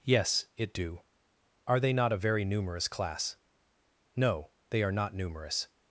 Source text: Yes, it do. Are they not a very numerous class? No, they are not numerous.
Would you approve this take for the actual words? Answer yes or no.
yes